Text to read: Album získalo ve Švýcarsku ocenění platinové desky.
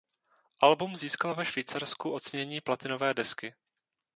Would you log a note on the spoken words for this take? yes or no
no